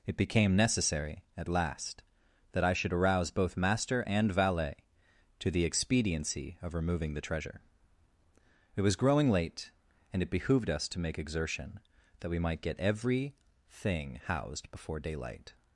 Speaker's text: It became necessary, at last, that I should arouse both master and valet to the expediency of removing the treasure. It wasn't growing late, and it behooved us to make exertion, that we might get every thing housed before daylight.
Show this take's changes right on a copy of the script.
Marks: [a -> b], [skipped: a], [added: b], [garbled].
It became necessary, at last, that I should arouse both master and valet to the expediency of removing the treasure. It [wasn't -> was] growing late, and it behooved us to make exertion, that we might get every thing housed before daylight.